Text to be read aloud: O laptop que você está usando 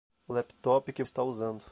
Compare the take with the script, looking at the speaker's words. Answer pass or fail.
fail